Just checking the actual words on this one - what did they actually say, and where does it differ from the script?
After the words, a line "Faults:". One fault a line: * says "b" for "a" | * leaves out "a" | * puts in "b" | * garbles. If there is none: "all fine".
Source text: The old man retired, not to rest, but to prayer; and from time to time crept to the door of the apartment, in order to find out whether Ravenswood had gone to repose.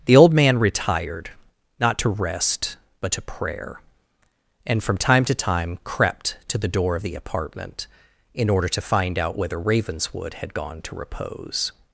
The old man retired, not to rest, but to prayer; and from time to time crept to the door of the apartment, in order to find out whether Ravenswood had gone to repose.
Faults:
all fine